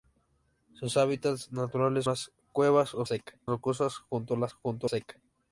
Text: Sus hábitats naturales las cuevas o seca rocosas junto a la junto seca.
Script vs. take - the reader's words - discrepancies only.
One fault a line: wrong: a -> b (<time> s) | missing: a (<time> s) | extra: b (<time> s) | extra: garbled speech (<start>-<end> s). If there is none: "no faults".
no faults